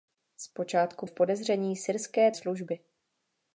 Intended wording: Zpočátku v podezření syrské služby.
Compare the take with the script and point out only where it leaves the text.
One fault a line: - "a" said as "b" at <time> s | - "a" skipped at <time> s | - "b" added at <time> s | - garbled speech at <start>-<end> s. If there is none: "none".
none